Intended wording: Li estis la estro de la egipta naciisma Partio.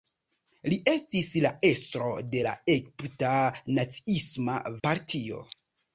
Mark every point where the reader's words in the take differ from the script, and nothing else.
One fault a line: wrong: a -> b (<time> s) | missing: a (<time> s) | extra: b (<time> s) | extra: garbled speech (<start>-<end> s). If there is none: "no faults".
no faults